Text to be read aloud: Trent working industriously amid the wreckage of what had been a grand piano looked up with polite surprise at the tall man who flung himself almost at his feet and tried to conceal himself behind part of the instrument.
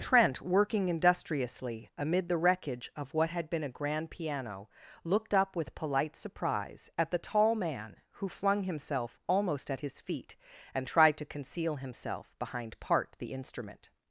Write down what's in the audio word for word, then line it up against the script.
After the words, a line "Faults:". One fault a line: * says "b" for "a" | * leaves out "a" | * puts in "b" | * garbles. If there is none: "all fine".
Trent working industriously amid the wreckage of what had been a grand piano looked up with polite surprise at the tall man who flung himself almost at his feet and tried to conceal himself behind part the instrument.
Faults:
* leaves out "of"